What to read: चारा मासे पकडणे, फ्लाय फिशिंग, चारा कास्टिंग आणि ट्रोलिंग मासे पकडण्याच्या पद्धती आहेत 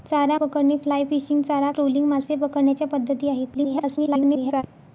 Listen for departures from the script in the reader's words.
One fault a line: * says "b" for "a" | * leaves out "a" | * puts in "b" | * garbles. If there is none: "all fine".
* leaves out "मासे"
* leaves out "कास्टिंग आणि"
* garbles